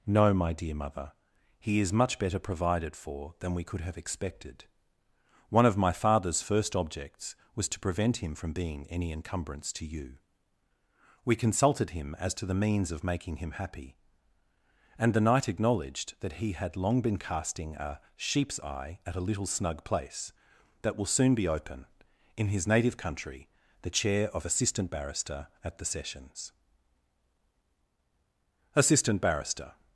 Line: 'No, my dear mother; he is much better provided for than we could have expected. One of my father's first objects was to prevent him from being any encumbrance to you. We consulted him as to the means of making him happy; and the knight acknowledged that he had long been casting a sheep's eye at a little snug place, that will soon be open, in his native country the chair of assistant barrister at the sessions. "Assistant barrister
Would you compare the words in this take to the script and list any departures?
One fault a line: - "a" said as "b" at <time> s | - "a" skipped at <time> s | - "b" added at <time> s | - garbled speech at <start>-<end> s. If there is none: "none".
none